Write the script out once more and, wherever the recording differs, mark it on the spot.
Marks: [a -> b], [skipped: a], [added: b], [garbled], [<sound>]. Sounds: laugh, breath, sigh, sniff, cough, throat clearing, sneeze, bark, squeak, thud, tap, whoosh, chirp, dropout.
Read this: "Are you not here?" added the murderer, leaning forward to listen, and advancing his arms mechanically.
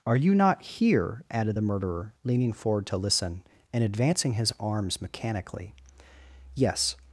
"Are you not here?" added the murderer, leaning forward to listen, and advancing his arms mechanically. [added: Yes]